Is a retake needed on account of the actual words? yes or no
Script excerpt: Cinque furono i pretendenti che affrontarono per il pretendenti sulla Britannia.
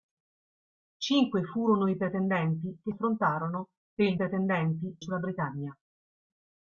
no